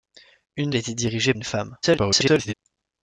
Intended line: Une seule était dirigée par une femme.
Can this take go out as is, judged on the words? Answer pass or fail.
fail